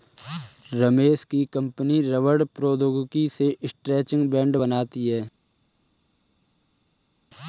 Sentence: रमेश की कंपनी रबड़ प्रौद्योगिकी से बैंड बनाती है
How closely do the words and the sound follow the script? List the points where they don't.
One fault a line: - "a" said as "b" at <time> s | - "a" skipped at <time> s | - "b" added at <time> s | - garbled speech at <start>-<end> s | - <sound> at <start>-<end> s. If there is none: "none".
- "स्ट्रैचिंग" added at 3.6 s